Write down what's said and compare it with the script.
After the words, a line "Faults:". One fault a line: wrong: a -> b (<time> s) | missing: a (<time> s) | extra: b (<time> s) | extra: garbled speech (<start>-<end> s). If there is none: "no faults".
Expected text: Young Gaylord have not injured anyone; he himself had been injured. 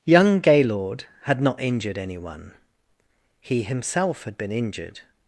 Young Gaylord had not injured anyone; he himself had been injured.
Faults:
wrong: have -> had (1.2 s)